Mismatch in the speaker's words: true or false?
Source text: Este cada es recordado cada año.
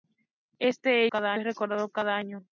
false